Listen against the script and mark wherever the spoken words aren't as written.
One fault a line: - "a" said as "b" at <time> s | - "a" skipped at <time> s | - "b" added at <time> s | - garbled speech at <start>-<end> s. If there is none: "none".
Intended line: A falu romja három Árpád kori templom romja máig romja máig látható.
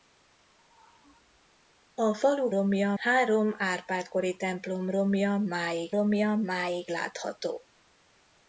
none